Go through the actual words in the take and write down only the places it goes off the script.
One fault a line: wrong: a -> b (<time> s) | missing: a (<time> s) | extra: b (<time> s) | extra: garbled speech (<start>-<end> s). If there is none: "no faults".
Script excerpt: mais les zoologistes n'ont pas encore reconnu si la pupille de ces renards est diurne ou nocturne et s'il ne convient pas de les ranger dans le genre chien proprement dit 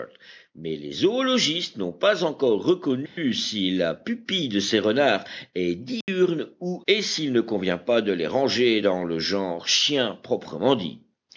missing: nocturne (6.8 s)